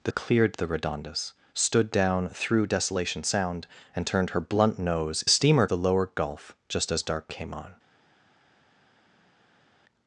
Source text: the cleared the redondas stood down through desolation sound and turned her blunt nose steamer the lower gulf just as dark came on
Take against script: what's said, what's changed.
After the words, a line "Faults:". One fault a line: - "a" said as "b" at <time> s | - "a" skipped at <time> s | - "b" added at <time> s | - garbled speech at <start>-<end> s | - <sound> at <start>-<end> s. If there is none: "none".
the cleared the redondas stood down through desolation sound and turned her blunt nose steamer the lower gulf just as dark came on
Faults:
none